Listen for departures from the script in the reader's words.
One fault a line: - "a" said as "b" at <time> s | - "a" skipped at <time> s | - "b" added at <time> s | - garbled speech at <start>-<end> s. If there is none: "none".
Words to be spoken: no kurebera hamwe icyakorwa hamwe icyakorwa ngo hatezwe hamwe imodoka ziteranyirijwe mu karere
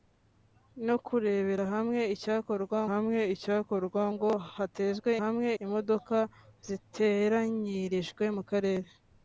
none